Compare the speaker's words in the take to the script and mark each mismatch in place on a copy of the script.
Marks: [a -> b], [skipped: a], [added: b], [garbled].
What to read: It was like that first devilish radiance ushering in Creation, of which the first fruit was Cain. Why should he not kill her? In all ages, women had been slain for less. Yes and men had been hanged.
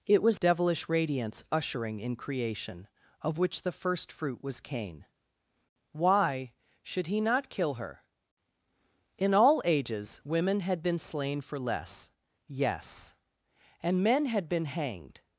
It was [skipped: like that first] devilish radiance ushering in Creation, of which the first fruit was Cain. Why should he not kill her? In all ages, women had been slain for less. Yes and men had been hanged.